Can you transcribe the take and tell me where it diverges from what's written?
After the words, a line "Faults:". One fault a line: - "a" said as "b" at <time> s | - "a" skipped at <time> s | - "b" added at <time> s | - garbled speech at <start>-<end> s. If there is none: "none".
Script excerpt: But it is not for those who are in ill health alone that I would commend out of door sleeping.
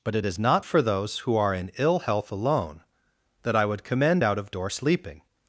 But it is not for those who are in ill health alone that I would commend out of door sleeping.
Faults:
none